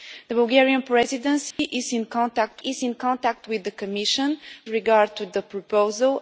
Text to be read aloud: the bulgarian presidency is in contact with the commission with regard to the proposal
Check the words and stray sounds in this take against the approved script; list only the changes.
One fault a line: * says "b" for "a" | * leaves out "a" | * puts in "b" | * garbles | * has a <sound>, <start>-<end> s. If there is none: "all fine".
* has a dropout, 1.5-1.6 s
* puts in "is in contact"
* leaves out "with"